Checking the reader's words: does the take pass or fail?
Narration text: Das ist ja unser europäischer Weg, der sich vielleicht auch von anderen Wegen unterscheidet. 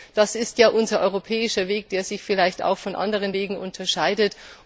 pass